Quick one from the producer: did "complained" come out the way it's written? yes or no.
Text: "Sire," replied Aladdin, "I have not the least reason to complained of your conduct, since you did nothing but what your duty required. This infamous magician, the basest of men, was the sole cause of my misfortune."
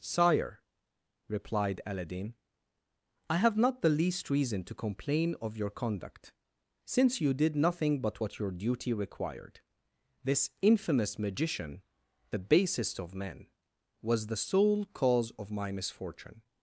no